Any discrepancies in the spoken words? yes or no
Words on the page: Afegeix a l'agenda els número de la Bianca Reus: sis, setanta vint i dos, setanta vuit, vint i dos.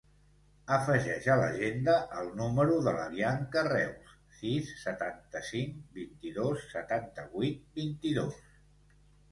yes